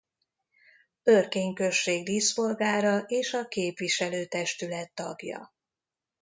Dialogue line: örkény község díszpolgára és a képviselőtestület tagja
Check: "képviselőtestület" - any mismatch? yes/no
no